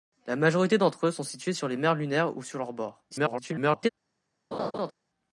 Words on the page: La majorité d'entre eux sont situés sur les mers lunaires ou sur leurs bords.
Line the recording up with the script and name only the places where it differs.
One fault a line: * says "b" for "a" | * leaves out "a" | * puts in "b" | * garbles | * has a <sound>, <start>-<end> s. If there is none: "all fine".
* garbles
* has a laugh, 4.5-4.9 s